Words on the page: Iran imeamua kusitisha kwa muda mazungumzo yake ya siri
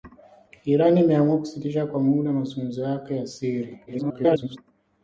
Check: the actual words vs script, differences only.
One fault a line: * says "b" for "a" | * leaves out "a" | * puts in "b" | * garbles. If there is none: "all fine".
* garbles